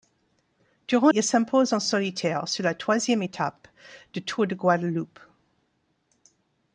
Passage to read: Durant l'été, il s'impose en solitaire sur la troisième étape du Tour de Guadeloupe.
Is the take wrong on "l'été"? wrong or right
wrong